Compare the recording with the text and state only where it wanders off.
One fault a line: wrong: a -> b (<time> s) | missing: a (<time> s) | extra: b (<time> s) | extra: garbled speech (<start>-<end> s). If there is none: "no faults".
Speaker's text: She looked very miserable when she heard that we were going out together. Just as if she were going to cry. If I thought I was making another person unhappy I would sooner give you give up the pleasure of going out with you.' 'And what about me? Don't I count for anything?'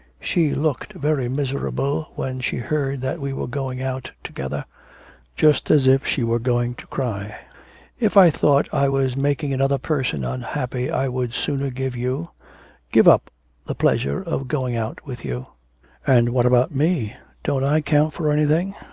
no faults